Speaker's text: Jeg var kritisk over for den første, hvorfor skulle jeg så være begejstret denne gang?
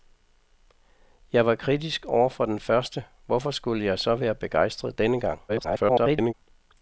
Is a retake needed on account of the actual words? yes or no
yes